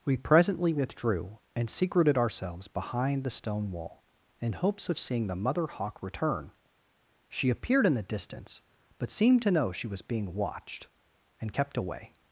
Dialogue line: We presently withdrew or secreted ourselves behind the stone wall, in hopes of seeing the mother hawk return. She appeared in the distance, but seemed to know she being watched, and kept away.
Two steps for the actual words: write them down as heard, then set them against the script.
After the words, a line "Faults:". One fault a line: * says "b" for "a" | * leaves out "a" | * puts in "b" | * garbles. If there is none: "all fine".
We presently withdrew and secreted ourselves behind the stone wall, in hopes of seeing the mother hawk return. She appeared in the distance, but seemed to know she was being watched, and kept away.
Faults:
* says "and" for "or"
* puts in "was"